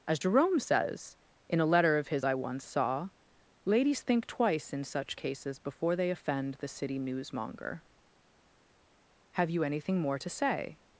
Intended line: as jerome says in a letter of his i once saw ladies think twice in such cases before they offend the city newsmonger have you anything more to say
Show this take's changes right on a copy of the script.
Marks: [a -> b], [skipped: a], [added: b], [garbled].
as jerome says in a letter of his i once saw ladies think twice in such cases before they offend the city newsmonger have you anything more to say